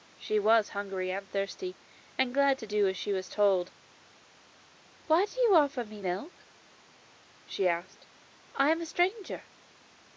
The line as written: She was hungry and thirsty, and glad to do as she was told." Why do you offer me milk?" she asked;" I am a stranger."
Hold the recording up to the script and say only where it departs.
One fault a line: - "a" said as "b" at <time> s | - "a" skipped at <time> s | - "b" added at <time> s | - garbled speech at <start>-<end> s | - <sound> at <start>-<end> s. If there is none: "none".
none